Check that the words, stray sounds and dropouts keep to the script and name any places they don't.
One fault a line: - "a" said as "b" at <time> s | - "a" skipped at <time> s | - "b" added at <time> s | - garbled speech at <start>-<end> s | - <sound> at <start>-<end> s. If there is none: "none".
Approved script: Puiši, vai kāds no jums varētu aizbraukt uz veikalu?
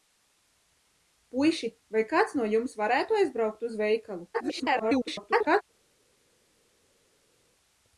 - garbled speech at 4.3-5.6 s